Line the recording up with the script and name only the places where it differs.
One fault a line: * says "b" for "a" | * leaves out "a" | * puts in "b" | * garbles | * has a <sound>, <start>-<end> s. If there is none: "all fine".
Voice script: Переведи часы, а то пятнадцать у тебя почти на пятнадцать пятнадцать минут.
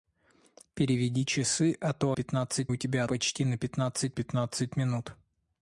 all fine